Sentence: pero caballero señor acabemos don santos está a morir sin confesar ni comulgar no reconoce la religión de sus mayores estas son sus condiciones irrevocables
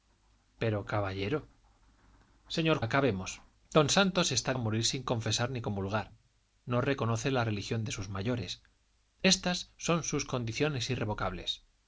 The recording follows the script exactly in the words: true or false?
true